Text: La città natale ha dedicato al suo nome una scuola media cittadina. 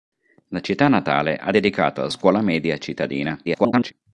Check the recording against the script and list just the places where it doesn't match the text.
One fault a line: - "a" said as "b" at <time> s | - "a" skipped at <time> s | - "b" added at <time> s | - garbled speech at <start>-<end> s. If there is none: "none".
- "suo nome una" skipped at 2.1 s
- garbled speech at 3.4-3.9 s